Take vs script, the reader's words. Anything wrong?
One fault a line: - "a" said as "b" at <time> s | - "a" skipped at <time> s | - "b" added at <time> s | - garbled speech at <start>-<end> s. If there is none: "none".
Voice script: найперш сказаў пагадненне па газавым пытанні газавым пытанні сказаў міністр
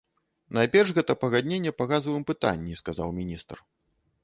- "сказаў" said as "гэта" at 1.0 s
- "газавым пытанні" skipped at 2.8 s